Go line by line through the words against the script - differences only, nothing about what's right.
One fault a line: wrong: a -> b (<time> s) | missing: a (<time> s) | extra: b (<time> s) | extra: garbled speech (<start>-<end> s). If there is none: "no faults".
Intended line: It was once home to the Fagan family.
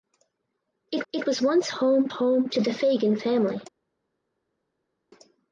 extra: it (1.1 s)
extra: home (2.1 s)